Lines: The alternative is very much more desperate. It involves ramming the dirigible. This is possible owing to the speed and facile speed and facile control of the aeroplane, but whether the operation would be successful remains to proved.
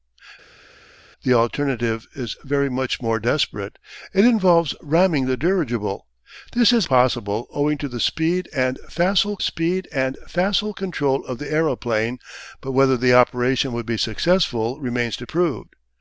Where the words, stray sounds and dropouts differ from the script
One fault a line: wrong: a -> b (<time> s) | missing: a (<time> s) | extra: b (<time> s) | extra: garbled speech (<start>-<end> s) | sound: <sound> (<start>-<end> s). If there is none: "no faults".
no faults